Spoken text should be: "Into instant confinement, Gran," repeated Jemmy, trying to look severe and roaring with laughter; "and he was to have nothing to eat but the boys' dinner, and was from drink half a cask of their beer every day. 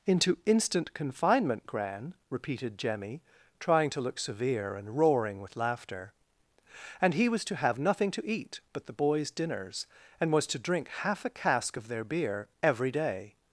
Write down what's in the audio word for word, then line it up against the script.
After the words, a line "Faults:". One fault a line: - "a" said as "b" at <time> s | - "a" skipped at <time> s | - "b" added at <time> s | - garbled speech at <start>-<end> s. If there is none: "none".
"Into instant confinement, Gran," repeated Jemmy, trying to look severe and roaring with laughter; "and he was to have nothing to eat but the boys' dinners, and was to drink half a cask of their beer every day.
Faults:
- "dinner" said as "dinners" at 9.3 s
- "from" said as "to" at 10.5 s